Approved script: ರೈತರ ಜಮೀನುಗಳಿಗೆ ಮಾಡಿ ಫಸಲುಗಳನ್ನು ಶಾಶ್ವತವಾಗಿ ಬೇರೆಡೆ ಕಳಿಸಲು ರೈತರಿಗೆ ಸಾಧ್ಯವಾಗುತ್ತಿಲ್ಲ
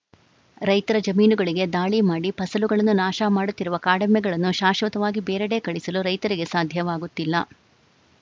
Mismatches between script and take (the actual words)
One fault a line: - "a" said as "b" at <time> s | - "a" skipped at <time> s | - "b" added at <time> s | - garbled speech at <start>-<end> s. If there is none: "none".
- "ದಾಳಿ" added at 1.7 s
- "ನಾಶ ಮಾಡುತ್ತಿರುವ ಕಾಡೆಮ್ಮೆಗಳನ್ನು" added at 3.0 s